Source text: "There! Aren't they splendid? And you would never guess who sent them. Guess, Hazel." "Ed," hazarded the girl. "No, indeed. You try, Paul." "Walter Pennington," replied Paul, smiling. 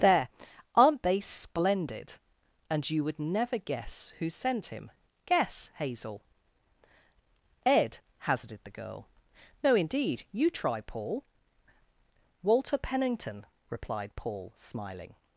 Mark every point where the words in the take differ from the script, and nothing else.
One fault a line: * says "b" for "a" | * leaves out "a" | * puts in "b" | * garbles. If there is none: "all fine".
* says "him" for "them"